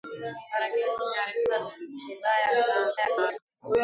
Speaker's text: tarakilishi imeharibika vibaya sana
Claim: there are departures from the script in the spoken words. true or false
true